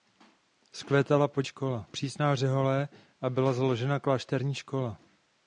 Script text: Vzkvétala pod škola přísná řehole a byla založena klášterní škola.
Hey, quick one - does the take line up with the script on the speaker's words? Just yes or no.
yes